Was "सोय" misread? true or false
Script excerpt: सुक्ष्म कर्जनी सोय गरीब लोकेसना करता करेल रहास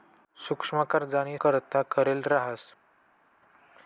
true